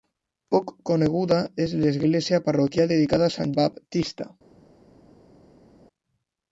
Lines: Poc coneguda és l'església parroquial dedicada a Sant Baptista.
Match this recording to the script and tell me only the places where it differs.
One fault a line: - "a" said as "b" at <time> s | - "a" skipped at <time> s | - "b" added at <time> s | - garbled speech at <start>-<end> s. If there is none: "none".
none